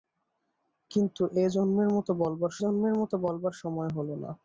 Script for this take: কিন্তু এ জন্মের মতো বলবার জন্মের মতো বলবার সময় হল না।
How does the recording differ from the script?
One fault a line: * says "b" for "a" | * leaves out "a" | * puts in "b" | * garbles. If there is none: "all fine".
all fine